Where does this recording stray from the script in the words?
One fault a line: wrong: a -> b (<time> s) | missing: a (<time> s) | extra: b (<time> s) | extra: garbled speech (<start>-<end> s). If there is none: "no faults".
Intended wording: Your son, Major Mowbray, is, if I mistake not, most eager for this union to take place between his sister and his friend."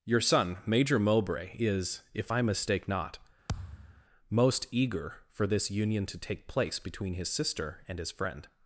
no faults